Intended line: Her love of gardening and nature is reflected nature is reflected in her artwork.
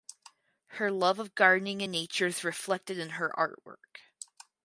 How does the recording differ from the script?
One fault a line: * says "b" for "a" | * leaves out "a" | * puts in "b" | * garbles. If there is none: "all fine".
* leaves out "nature is reflected"